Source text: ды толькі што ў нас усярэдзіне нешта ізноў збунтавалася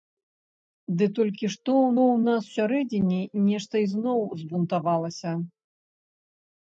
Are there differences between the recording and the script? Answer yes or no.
yes